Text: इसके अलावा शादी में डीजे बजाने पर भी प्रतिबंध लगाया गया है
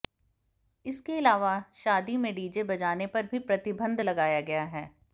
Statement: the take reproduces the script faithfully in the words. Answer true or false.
true